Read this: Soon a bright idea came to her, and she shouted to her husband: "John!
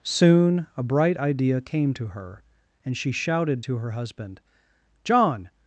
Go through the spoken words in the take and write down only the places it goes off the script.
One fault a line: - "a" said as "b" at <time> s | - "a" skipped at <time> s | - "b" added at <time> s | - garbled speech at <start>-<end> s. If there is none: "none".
none